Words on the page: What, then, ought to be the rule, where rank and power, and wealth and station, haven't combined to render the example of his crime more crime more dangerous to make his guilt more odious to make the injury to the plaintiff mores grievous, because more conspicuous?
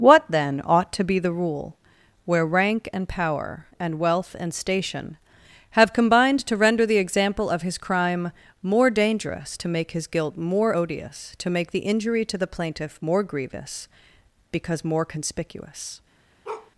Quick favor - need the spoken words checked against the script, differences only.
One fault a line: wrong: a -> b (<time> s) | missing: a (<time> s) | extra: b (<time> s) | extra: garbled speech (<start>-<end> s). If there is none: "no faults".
wrong: haven't -> have (5.8 s)
missing: crime more (8.9 s)
wrong: mores -> more (13.0 s)